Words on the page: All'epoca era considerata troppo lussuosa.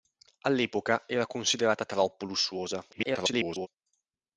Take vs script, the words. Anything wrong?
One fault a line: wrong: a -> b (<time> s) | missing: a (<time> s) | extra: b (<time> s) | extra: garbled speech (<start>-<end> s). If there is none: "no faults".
extra: garbled speech (2.9-3.7 s)